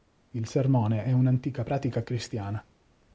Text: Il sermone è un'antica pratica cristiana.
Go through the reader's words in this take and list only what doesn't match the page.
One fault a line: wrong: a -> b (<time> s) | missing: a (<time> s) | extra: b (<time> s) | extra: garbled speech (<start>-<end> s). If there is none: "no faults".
no faults